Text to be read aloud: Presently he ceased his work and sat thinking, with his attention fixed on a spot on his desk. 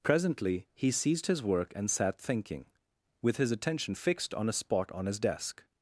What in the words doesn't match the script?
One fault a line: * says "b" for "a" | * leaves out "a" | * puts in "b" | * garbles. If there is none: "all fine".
all fine